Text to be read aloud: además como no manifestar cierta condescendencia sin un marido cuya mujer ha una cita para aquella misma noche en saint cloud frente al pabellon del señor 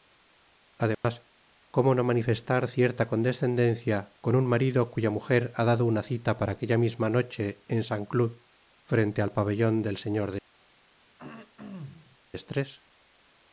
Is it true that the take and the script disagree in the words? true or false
true